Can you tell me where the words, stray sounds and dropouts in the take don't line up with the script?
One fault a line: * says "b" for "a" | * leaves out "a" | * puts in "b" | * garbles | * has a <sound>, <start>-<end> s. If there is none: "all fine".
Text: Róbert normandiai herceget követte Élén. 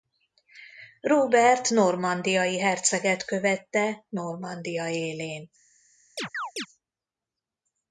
* puts in "Normandia"
* has a chirp, 6.2-6.7 s